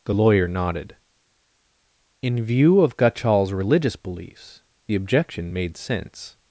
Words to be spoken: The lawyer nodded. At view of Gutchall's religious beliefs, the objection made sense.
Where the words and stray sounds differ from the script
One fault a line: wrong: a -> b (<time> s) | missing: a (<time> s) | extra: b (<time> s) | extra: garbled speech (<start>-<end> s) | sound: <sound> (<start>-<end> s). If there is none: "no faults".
wrong: At -> In (2.2 s)